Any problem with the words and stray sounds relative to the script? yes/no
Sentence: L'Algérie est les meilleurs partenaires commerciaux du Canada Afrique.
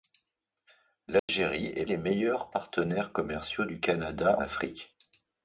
yes